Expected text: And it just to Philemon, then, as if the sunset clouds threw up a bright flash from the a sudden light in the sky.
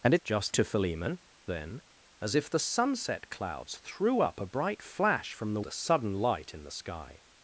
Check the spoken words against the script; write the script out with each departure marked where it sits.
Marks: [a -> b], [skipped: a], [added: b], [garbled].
And it just to Philemon, then, as if the sunset clouds threw up a bright flash from the a sudden light in the sky.